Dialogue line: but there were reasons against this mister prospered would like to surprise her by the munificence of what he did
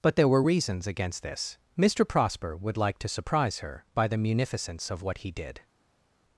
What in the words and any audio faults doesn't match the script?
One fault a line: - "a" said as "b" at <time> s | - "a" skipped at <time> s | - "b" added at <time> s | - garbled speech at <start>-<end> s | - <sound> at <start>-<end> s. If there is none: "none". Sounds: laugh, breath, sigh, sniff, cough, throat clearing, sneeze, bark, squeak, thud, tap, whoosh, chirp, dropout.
- "prospered" said as "prosper" at 2.0 s